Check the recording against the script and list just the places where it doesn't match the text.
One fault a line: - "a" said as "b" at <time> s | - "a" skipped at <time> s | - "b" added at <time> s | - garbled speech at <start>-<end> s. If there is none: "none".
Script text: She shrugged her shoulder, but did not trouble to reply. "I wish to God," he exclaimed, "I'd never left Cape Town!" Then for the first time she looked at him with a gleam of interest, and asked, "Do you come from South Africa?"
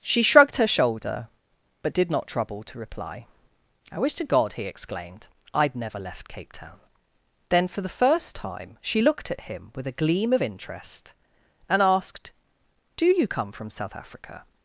none